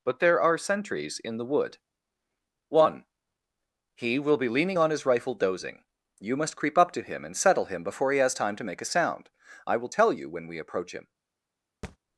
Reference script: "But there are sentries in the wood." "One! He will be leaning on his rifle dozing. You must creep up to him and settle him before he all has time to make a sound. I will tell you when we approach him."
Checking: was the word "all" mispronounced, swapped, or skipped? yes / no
yes